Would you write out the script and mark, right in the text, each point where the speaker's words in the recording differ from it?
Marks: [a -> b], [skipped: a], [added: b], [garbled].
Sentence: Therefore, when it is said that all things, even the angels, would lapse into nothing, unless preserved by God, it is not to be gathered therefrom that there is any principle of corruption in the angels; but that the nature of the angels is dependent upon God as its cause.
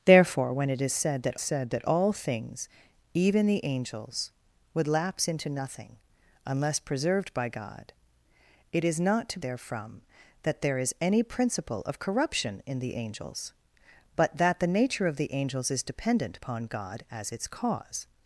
Therefore, when it is said that [added: said that] all things, even the angels, would lapse into nothing, unless preserved by God, it is not to [skipped: be gathered] therefrom that there is any principle of corruption in the angels; but that the nature of the angels is dependent upon God as its cause.